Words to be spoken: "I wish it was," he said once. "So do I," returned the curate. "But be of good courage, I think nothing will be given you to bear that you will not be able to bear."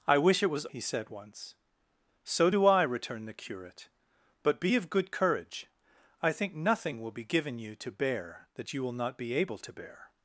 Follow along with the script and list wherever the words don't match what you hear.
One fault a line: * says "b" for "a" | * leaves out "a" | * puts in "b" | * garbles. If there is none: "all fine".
all fine